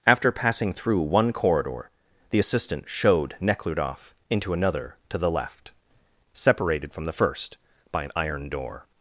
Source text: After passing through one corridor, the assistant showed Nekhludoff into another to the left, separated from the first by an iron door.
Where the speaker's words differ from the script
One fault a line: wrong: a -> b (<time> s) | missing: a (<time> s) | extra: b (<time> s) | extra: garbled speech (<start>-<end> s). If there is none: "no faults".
no faults